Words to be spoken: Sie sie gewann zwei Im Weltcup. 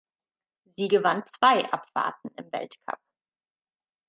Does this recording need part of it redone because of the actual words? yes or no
yes